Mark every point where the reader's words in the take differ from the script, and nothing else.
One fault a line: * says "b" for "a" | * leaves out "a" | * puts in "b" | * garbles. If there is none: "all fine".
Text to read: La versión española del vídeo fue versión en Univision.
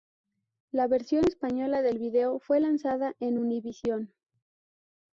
* says "lanzada" for "versión"